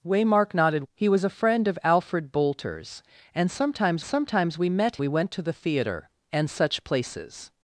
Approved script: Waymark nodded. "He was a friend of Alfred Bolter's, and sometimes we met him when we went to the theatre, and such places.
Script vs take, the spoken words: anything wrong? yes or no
yes